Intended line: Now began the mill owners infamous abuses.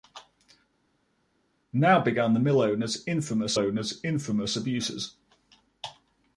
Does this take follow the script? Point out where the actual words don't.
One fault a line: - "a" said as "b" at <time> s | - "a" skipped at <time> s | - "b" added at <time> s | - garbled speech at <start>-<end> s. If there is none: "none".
- "owners infamous" added at 3.6 s